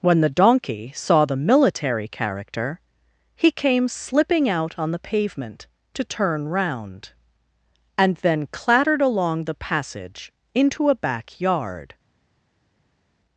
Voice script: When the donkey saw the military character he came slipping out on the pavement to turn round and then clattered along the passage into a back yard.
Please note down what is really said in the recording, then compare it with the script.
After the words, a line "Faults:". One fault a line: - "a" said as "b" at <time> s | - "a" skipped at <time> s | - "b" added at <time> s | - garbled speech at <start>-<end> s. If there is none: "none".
When the donkey saw the military character he came slipping out on the pavement to turn round and then clattered along the passage into a back yard.
Faults:
none